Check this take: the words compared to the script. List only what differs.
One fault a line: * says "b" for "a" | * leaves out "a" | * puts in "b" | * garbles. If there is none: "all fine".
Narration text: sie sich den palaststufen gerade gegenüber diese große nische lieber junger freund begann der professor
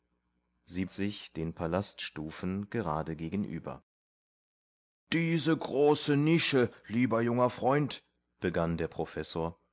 all fine